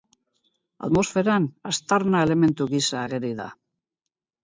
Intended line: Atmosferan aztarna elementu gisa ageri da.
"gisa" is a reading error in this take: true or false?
false